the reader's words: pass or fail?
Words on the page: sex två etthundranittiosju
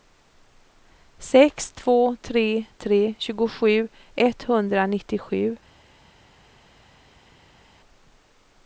fail